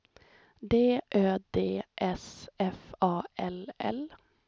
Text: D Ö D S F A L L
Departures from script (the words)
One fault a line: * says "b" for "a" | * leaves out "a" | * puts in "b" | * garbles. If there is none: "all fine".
all fine